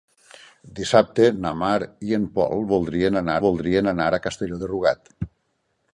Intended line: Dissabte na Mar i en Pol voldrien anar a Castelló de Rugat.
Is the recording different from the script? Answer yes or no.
yes